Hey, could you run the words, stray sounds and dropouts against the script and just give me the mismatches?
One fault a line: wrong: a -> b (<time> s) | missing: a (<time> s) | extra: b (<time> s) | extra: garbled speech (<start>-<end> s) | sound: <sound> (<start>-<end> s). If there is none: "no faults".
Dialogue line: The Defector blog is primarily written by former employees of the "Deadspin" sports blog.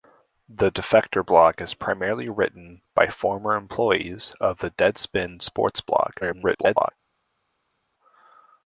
extra: garbled speech (6.2-6.9 s)